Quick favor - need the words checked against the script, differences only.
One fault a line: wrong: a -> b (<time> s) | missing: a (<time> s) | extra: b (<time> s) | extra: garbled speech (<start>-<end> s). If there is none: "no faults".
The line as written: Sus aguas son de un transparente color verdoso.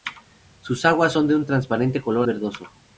no faults